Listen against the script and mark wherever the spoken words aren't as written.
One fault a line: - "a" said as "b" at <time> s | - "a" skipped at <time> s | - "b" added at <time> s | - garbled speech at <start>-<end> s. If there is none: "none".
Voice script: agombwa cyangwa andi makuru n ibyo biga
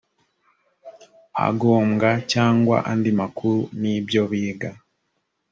none